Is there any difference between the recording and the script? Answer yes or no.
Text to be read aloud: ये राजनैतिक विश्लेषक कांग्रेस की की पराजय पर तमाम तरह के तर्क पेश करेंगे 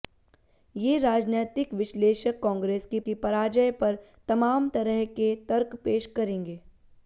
no